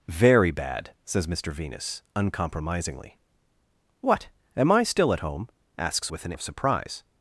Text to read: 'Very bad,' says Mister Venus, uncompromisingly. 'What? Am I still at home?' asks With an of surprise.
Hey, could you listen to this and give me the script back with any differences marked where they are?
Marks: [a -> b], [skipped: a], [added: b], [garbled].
'Very bad,' says Mister Venus, uncompromisingly. 'What? Am I still at home?' asks With an of surprise.